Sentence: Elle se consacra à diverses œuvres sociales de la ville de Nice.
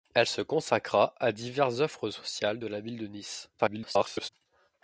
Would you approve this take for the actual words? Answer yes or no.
no